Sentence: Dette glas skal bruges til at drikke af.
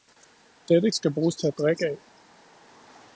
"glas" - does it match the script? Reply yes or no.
no